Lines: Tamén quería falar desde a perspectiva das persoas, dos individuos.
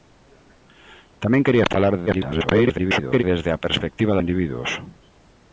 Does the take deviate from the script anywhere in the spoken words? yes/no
yes